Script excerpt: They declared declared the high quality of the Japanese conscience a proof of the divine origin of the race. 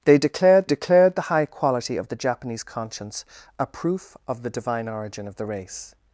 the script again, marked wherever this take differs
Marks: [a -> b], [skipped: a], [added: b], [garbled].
They declared declared the high quality of the Japanese conscience a proof of the divine origin of the race.